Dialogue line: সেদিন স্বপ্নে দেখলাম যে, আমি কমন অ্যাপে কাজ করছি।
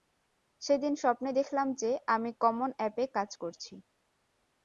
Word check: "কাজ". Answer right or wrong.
right